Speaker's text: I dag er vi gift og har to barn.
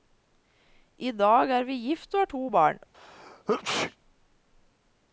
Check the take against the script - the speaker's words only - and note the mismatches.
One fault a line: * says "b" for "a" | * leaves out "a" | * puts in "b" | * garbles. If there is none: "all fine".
all fine